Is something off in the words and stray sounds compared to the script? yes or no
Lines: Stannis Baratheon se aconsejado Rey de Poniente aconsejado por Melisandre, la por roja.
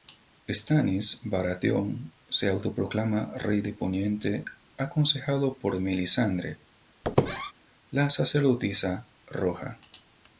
yes